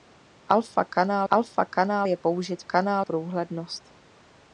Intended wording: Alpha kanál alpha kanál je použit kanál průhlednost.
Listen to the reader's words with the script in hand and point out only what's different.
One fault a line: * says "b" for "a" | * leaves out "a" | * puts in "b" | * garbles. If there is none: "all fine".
all fine